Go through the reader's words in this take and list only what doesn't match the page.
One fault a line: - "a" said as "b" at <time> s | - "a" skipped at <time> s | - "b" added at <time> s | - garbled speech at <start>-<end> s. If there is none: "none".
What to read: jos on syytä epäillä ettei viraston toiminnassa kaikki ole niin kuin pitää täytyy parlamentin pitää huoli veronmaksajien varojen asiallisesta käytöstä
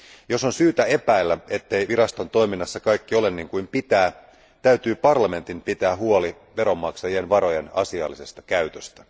none